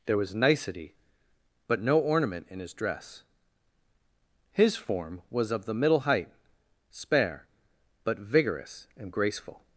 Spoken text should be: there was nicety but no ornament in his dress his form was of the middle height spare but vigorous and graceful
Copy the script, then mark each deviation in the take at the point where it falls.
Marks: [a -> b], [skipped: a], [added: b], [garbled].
there was nicety but no ornament in his dress his form was of the middle height spare but vigorous and graceful